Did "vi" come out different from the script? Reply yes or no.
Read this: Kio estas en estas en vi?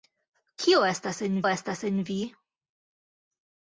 no